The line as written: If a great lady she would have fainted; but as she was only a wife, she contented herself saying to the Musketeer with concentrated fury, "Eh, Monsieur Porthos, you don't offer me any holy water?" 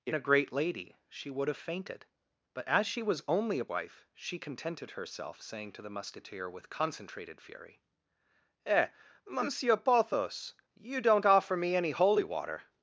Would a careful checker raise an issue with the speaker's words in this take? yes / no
no